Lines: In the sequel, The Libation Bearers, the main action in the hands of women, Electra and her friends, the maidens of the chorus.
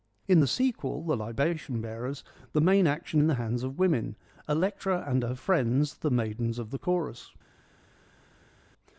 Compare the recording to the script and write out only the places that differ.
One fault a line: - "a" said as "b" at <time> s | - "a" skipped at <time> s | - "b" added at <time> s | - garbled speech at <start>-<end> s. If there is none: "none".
none